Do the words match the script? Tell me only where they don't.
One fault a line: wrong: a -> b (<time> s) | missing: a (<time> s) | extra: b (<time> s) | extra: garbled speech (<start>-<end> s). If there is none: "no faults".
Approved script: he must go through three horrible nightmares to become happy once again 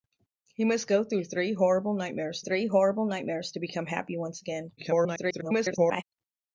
extra: three horrible nightmares (2.4 s)
extra: garbled speech (4.8-6.0 s)